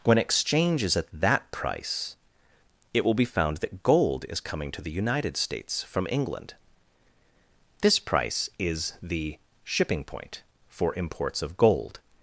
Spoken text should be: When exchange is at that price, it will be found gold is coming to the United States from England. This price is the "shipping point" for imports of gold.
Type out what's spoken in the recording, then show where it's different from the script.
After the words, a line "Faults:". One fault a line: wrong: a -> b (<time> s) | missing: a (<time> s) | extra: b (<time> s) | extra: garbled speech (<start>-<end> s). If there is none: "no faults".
When exchange is at that price, it will be found that gold is coming to the United States from England. This price is the "shipping point" for imports of gold.
Faults:
extra: that (3.6 s)